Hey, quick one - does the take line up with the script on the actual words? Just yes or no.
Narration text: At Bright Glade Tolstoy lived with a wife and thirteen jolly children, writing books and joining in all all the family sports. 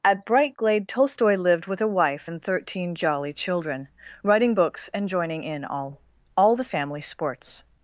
yes